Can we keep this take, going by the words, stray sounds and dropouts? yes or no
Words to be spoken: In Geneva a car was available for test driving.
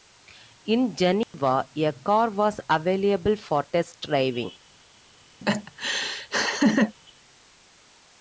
no